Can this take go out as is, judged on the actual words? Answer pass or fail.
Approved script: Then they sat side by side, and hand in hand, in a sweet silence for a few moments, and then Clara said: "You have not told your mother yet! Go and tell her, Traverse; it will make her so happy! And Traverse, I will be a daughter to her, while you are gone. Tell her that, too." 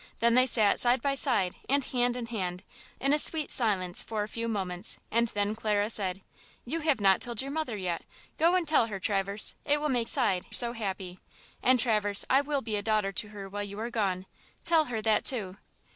fail